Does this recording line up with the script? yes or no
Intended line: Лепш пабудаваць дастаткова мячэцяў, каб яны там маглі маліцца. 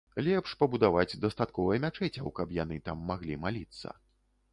yes